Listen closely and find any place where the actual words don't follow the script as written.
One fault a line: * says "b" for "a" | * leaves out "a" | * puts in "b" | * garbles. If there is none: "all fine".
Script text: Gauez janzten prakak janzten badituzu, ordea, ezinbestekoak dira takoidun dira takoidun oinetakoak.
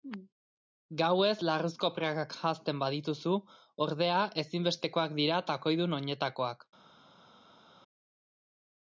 * says "larruzko" for "janzten"
* leaves out "dira takoidun"